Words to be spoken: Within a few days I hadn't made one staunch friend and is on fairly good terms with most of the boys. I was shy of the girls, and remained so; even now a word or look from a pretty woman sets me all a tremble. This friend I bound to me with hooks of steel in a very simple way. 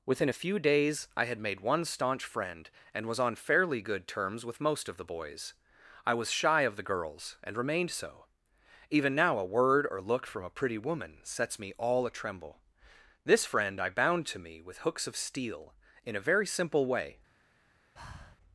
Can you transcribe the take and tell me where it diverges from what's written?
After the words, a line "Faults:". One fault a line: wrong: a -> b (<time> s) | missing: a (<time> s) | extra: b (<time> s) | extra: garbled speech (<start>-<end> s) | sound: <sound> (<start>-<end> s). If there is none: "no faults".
Within a few days I had made one staunch friend and was on fairly good terms with most of the boys. I was shy of the girls, and remained so; even now a word or look from a pretty woman sets me all a tremble. This friend I bound to me with hooks of steel in a very simple way.
Faults:
wrong: hadn't -> had (1.3 s)
wrong: is -> was (3.1 s)
sound: breath (18.0-18.4 s)